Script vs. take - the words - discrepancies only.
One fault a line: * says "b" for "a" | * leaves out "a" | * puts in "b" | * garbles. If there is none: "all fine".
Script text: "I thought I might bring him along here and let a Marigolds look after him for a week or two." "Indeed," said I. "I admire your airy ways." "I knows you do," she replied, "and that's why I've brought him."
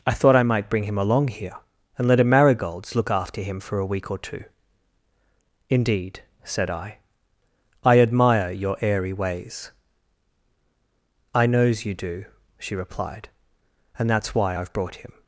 all fine